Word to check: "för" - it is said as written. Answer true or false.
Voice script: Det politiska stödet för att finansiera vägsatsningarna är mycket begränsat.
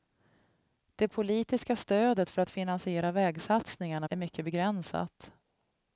true